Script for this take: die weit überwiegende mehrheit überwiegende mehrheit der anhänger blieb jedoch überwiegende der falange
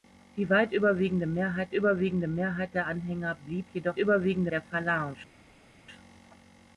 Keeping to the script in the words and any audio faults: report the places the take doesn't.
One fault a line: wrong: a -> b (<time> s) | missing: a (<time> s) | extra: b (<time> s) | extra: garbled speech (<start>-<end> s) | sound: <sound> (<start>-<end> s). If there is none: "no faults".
no faults